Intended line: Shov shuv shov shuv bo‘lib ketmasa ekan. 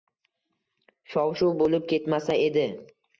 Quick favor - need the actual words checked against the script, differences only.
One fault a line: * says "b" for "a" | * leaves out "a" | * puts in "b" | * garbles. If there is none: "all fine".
* leaves out "shov shuv"
* says "edi" for "ekan"